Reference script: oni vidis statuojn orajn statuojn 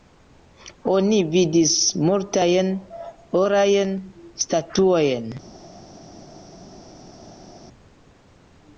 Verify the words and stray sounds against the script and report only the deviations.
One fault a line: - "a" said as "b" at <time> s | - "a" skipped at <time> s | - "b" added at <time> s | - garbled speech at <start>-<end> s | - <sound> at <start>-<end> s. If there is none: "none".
- "statuojn" said as "multajn" at 2.1 s